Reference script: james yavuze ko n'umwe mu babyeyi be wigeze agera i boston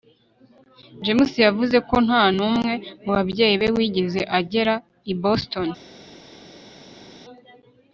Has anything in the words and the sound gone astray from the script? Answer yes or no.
yes